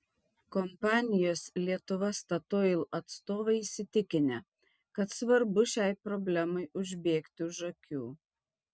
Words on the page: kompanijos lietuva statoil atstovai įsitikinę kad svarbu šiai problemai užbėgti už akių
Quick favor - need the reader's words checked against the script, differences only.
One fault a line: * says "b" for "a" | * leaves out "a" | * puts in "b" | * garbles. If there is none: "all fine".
all fine